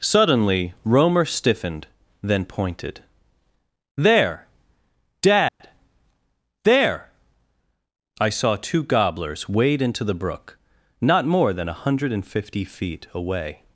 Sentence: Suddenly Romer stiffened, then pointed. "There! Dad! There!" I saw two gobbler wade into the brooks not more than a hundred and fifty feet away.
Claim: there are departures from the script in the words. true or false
true